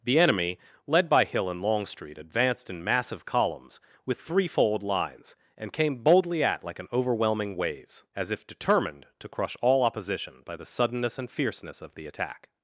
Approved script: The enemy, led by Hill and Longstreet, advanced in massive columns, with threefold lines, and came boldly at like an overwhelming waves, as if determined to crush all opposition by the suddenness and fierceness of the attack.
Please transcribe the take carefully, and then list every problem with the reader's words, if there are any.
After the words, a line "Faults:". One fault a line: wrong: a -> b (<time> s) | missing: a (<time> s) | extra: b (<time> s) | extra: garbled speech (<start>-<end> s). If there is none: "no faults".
The enemy, led by Hill and Longstreet, advanced in massive columns, with threefold lines, and came boldly at like an overwhelming waves, as if determined to crush all opposition by the suddenness and fierceness of the attack.
Faults:
no faults